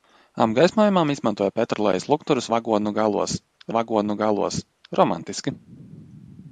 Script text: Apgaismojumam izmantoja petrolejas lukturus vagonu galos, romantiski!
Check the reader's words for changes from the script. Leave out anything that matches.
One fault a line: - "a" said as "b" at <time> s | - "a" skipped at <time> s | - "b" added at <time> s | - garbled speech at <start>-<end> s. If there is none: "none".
- "vagonu galos" added at 3.8 s